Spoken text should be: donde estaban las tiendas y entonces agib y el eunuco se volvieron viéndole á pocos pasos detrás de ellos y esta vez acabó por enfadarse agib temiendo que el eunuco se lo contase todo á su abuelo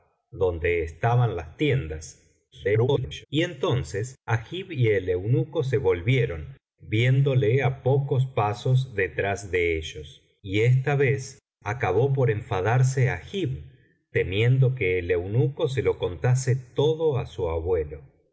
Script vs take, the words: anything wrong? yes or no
yes